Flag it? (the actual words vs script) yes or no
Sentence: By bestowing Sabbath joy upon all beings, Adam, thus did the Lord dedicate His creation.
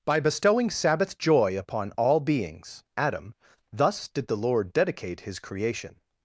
no